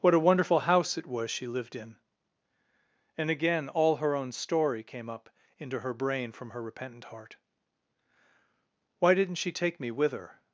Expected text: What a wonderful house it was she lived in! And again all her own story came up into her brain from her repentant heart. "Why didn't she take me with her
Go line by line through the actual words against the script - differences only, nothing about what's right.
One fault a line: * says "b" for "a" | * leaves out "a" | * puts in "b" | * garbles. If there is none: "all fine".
all fine